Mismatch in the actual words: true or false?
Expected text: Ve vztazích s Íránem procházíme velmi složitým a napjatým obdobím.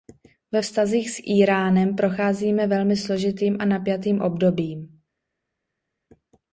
false